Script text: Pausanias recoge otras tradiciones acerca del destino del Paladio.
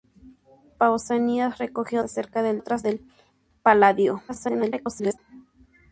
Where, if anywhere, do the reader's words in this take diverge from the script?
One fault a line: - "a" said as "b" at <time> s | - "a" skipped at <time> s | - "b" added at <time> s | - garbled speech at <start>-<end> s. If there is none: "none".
- "otras tradiciones" skipped at 2.0 s
- "destino" said as "otras" at 2.6 s
- garbled speech at 4.3-5.2 s